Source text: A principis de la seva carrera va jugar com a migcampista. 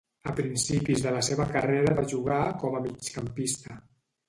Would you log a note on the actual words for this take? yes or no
no